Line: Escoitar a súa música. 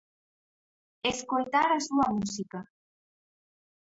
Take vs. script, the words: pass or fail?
pass